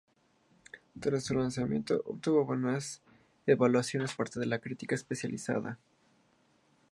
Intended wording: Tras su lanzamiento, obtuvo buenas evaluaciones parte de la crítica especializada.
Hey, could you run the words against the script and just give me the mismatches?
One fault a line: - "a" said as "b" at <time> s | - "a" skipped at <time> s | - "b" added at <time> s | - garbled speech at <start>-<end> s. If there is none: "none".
none